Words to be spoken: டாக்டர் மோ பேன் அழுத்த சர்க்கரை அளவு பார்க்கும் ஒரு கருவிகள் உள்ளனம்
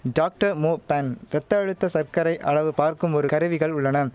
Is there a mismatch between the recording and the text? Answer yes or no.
yes